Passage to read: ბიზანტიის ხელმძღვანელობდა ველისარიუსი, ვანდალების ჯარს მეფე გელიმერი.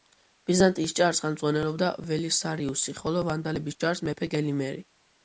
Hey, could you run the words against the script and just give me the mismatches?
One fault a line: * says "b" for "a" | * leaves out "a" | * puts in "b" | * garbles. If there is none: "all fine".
* puts in "ჯარს"
* puts in "ხოლო"